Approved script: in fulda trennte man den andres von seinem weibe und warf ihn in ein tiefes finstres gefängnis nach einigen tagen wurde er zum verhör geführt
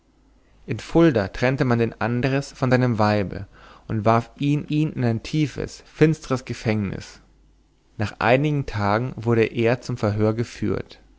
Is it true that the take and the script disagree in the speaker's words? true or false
true